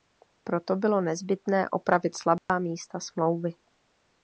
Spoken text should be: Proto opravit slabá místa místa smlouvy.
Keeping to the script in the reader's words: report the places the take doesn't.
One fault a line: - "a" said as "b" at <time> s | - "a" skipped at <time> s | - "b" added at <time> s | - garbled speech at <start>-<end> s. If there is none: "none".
- "bylo nezbytné" added at 0.8 s
- "místa" skipped at 3.0 s